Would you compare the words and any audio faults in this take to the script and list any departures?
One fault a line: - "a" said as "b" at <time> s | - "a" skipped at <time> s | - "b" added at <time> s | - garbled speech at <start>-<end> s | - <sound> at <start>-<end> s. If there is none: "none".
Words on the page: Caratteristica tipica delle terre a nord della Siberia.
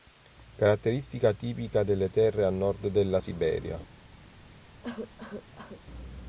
- cough at 4.8-5.8 s